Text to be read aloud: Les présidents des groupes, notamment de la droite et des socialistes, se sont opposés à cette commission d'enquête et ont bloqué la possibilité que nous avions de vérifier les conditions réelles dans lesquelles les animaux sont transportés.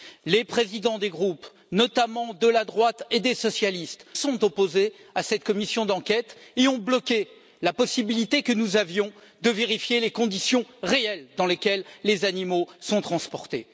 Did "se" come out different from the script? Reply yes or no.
yes